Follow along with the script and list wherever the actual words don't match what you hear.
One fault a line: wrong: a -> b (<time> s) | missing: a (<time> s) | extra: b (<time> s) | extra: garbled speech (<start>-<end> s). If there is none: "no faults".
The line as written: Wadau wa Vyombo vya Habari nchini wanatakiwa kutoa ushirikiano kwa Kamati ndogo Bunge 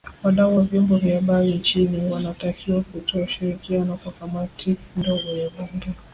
extra: ya (5.4 s)